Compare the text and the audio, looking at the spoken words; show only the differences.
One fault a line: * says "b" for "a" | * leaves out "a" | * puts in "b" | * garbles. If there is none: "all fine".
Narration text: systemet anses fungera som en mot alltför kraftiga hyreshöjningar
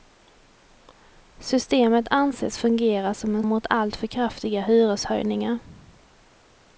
all fine